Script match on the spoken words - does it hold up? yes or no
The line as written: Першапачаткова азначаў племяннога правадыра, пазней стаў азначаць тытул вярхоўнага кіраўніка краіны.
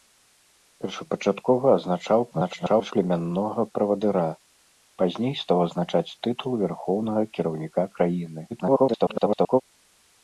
no